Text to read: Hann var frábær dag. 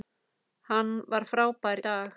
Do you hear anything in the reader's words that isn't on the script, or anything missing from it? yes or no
no